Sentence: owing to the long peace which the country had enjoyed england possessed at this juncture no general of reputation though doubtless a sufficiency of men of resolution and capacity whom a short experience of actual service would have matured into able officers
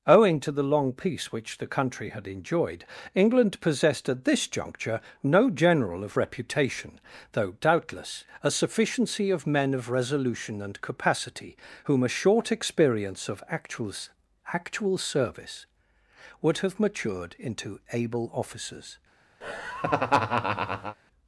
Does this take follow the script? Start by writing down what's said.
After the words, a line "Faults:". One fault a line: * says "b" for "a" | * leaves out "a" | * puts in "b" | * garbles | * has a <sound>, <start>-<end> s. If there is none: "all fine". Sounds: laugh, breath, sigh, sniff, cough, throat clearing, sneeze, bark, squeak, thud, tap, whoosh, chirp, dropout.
owing to the long peace which the country had enjoyed england possessed at this juncture no general of reputation though doubtless a sufficiency of men of resolution and capacity whom a short experience of actual actual service would have matured into able officers
Faults:
* puts in "actual"
* has a laugh, 19.4-21.0 s